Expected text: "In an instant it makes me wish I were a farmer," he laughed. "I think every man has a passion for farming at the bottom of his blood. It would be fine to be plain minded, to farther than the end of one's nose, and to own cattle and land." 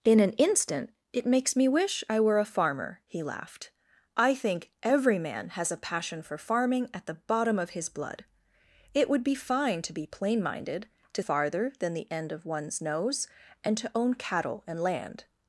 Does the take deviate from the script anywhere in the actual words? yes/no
no